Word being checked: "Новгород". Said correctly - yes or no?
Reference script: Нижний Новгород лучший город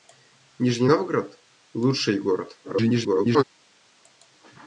yes